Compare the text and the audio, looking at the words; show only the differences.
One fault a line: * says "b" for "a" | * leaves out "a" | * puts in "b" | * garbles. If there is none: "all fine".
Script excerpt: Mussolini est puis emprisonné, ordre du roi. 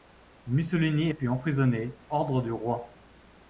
all fine